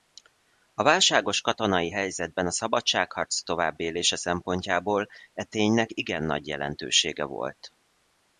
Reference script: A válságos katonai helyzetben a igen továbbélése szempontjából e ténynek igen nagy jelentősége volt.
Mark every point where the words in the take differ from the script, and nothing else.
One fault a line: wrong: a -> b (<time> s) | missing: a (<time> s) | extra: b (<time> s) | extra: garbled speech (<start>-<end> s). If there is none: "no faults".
wrong: igen -> szabadságharc (2.5 s)